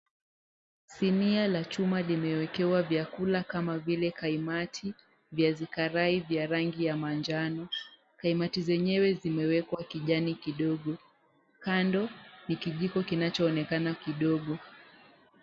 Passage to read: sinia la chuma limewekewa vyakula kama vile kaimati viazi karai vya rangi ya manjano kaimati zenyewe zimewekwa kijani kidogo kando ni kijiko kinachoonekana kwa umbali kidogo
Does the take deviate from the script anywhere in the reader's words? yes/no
yes